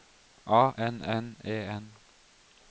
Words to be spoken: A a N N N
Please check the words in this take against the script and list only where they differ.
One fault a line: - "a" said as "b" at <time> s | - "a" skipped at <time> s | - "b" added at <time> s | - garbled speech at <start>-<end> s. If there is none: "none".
- "a" said as "N" at 0.8 s
- "N" said as "E" at 1.4 s